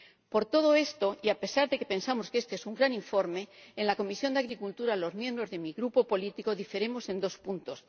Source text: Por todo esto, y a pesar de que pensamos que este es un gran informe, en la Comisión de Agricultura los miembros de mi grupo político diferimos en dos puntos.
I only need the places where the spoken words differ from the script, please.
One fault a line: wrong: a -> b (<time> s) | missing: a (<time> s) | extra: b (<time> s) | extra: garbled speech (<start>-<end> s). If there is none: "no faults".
no faults